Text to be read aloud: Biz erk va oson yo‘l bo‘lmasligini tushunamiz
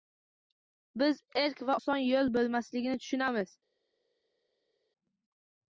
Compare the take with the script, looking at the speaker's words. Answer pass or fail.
pass